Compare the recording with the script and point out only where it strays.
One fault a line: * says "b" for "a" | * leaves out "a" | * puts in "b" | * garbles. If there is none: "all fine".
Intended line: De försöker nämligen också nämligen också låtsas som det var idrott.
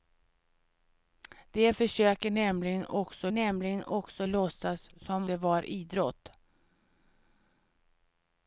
all fine